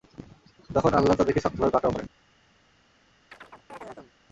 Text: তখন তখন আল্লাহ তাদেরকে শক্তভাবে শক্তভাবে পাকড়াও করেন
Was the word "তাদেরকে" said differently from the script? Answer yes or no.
no